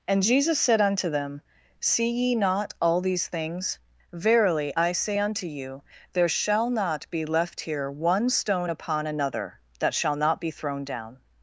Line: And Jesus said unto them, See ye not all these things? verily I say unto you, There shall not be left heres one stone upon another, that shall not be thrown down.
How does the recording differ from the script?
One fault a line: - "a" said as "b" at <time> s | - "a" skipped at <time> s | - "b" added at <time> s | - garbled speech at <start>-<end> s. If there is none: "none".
- "heres" said as "here" at 7.6 s